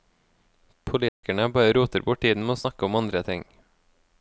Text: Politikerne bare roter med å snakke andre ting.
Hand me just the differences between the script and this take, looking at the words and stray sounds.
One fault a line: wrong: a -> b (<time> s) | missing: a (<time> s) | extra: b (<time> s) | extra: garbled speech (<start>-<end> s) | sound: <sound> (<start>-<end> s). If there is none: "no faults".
sound: dropout (1.1-1.2 s)
extra: bort tiden (2.1 s)
extra: om (2.9 s)